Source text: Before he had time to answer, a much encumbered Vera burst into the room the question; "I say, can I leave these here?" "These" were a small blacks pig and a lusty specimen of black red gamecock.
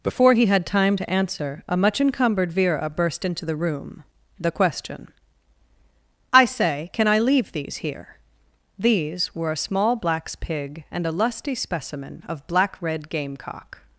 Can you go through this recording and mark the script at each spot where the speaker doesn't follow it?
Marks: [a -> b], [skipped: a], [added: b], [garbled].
Before he had time to answer, a much encumbered Vera burst into the room the question; "I say, can I leave these here?" "These" were a small blacks pig and a lusty specimen of black red gamecock.